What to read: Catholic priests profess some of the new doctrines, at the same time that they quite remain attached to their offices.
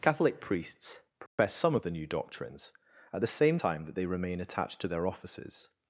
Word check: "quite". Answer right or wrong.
wrong